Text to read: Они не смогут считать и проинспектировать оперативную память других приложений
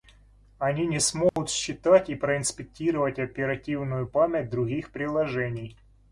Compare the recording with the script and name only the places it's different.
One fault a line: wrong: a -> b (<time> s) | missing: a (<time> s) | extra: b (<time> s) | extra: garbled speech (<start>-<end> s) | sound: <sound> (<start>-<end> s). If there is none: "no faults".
sound: dropout (1.3-1.4 s)